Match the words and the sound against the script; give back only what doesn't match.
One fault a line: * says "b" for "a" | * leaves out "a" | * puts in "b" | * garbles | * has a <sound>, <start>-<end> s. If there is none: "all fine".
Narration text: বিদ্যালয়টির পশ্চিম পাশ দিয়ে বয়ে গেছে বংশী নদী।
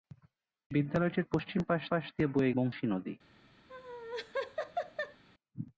* puts in "পাশ"
* leaves out "গেছে"
* has a laugh, 3.7-5.2 s